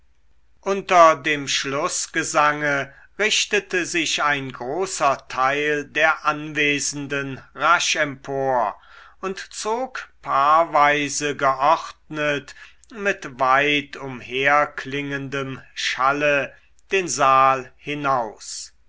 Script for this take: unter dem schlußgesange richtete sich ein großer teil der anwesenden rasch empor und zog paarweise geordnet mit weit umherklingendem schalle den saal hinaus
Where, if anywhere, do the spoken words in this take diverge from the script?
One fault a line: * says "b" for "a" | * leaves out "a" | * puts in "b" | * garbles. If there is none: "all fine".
all fine